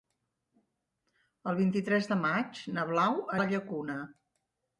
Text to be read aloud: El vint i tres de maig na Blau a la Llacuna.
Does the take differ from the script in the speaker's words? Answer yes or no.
no